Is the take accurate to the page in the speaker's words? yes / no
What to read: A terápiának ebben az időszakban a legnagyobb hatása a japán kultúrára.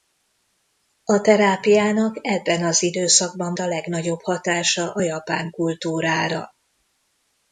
yes